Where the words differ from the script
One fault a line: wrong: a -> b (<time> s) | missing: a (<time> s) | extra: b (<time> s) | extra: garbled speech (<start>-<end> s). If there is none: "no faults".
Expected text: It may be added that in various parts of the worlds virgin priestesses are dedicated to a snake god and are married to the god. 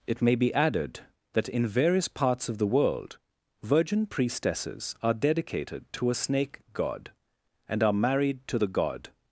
wrong: worlds -> world (2.7 s)